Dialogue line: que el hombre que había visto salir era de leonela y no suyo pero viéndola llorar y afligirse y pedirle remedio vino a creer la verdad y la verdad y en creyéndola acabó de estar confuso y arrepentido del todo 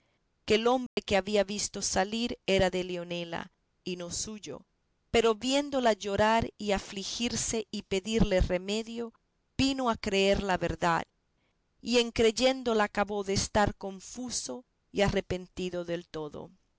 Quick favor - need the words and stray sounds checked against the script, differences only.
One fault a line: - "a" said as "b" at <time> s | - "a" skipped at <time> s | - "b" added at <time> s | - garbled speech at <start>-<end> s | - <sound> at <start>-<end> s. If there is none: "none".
- dropout at 0.9-1.0 s
- "la verdad y" skipped at 12.0 s